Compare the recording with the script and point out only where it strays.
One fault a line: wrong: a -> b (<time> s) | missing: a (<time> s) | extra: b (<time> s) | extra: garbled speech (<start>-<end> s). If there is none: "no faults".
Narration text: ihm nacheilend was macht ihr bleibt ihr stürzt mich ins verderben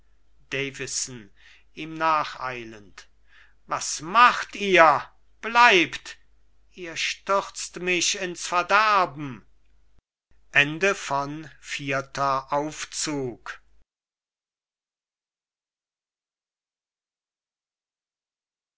no faults